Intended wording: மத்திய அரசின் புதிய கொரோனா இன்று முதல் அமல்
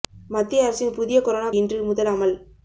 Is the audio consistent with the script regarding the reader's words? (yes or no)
yes